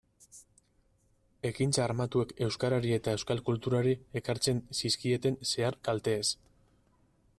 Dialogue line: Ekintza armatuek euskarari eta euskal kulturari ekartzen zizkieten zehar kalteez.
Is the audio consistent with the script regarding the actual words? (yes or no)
yes